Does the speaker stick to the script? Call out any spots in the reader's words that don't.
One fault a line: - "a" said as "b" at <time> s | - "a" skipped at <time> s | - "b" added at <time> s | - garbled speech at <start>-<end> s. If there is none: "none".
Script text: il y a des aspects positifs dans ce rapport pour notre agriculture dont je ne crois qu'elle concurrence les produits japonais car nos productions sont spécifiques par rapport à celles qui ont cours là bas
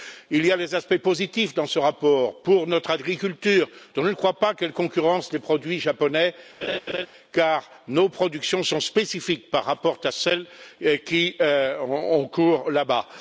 - "pas" added at 4.4 s